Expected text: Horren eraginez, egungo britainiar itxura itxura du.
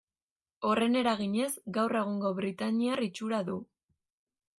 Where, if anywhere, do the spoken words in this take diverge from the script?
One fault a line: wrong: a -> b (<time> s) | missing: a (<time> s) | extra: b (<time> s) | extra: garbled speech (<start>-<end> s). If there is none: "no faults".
extra: gaur (1.8 s)
missing: itxura (3.4 s)